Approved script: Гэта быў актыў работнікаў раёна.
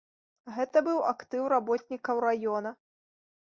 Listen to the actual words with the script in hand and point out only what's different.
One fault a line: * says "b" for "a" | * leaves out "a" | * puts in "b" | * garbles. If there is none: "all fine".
all fine